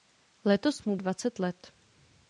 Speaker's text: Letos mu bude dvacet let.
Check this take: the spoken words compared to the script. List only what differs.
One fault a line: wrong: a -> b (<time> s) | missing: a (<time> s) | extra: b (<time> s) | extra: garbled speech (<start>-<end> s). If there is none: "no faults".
missing: bude (0.9 s)